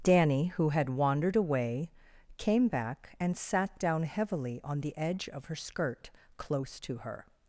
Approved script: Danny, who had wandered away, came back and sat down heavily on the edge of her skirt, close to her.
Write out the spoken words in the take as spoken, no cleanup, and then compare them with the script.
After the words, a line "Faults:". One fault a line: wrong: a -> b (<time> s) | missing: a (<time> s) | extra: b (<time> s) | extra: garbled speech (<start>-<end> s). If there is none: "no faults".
Danny, who had wandered away, came back and sat down heavily on the edge of her skirt, close to her.
Faults:
no faults